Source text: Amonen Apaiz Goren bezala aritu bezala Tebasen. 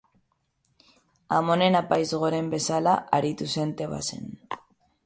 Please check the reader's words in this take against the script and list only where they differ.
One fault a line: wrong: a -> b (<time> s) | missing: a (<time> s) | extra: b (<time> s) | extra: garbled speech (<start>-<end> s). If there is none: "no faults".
wrong: bezala -> zen (3.6 s)